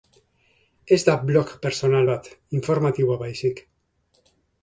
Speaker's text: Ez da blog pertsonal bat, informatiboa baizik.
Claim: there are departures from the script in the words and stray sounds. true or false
false